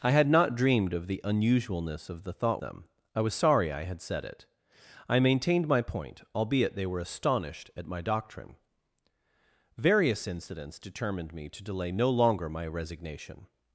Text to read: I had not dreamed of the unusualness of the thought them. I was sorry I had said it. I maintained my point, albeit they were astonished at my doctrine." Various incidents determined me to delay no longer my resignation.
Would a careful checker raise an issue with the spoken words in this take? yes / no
no